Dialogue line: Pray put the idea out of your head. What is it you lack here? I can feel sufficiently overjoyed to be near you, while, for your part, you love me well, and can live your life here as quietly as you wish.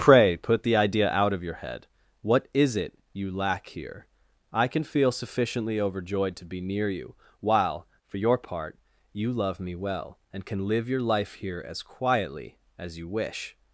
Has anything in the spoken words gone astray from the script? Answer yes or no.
no